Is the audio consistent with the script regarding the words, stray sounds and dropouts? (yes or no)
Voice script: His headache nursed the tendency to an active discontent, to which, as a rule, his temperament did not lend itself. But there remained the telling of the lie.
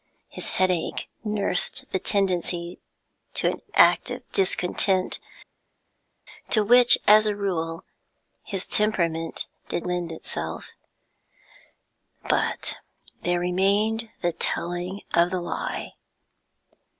no